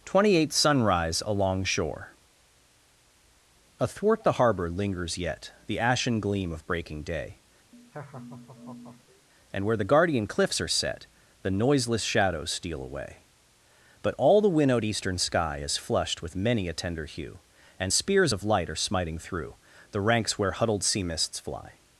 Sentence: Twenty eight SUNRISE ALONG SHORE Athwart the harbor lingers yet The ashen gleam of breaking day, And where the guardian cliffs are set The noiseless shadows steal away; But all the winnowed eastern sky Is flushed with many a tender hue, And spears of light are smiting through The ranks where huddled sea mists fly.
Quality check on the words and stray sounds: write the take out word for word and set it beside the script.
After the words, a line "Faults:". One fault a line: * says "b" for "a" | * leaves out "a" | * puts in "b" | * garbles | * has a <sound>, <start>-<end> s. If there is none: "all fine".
Twenty eight SUNRISE ALONG SHORE Athwart the harbor lingers yet The ashen gleam of breaking day, And where the guardian cliffs are set The noiseless shadows steal away; But all the winnowed eastern sky Is flushed with many a tender hue, And spears of light are smiting through The ranks where huddled sea mists fly.
Faults:
* has a laugh, 7.7-9.3 s